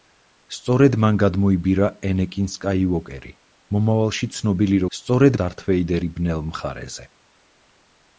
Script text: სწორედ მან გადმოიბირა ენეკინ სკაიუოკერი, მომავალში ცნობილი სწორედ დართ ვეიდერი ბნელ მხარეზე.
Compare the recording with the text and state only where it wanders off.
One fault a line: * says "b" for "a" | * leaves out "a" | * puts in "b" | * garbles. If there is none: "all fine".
all fine